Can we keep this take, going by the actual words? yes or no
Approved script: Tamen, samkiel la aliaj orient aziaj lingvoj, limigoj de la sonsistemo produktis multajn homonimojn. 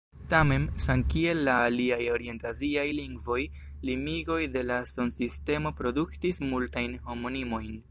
yes